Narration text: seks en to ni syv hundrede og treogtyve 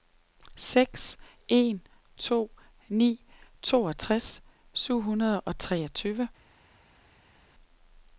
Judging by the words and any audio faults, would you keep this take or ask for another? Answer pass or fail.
fail